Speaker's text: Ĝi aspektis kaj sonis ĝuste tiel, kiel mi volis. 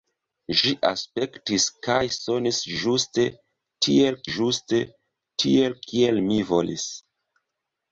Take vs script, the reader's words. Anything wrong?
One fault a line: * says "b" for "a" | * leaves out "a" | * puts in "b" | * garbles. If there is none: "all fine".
* puts in "ĝuste tiel"